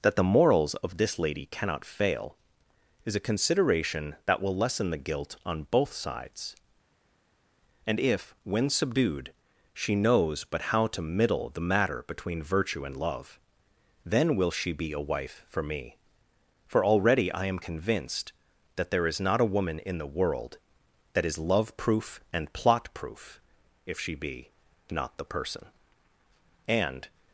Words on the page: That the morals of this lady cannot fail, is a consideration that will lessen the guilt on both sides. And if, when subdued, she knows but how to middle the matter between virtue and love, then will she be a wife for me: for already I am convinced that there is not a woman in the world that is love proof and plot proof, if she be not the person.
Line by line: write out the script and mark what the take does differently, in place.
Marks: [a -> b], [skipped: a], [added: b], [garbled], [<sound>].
That the morals of this lady cannot fail, is a consideration that will lessen the guilt on both sides. And if, when subdued, she knows but how to middle the matter between virtue and love, then will she be a wife for me: for already I am convinced that there is not a woman in the world that is love proof and plot proof, if she be not the person. [added: And]